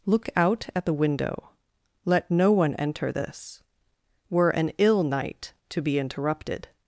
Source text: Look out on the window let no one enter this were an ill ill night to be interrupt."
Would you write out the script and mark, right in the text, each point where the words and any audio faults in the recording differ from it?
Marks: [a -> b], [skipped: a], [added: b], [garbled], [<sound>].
Look out [on -> at] the window let no one enter this were an ill [skipped: ill] night to be [interrupt." -> interrupted]